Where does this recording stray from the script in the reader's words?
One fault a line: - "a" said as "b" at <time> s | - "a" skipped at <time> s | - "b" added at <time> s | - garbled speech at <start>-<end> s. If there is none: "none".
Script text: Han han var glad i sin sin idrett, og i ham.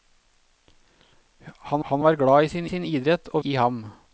none